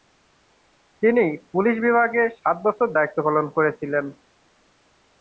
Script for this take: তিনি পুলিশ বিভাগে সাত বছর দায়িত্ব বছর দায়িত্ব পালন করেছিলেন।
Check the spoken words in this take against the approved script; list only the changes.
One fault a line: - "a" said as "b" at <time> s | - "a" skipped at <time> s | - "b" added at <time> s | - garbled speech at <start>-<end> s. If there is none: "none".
- "বছর দায়িত্ব" skipped at 3.2 s